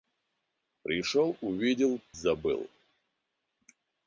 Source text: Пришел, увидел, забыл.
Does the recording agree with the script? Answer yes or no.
yes